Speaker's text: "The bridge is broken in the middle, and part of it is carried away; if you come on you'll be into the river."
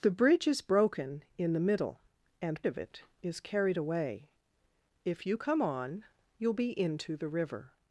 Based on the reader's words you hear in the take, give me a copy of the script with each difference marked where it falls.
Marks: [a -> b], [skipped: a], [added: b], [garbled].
"The bridge is broken in the middle, and [skipped: part] of it is carried away; if you come on you'll be into the river."